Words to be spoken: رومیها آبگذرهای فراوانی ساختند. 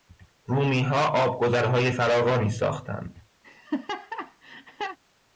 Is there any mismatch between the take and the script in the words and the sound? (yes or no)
yes